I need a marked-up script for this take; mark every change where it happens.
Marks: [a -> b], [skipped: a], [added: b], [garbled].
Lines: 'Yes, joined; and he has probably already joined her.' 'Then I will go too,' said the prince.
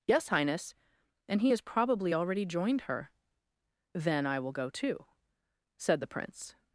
'Yes, [joined; -> highness] and he has probably already joined her.' 'Then I will go too,' said the prince.